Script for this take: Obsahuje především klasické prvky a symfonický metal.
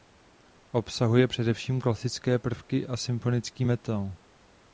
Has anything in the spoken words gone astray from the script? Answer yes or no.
no